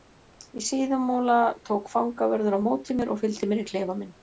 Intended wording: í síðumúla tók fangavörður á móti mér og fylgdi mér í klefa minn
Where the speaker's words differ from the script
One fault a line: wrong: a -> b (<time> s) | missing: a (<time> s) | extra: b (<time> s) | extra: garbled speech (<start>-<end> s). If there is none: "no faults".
no faults